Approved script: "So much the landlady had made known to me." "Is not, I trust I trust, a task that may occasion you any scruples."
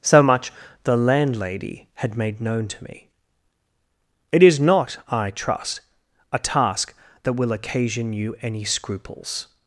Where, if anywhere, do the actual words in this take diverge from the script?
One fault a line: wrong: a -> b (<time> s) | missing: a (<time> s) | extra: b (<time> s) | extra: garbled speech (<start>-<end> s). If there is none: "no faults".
extra: It (4.3 s)
missing: I trust (5.8 s)
wrong: may -> will (7.3 s)